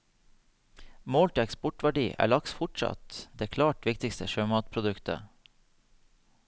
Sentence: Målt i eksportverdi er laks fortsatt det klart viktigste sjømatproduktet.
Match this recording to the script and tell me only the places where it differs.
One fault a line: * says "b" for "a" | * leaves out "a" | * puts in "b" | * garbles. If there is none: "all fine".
all fine